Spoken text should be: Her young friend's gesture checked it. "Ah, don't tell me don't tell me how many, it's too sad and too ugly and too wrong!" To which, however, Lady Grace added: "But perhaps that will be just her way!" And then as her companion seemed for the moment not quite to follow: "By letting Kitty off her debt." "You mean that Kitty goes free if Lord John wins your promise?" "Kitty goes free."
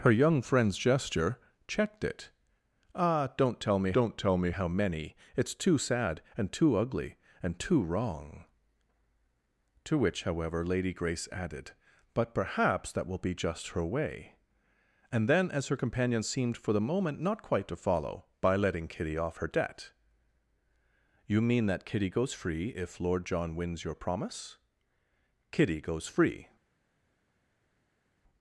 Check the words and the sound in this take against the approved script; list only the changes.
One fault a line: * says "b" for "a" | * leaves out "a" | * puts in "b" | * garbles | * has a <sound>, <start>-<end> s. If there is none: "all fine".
all fine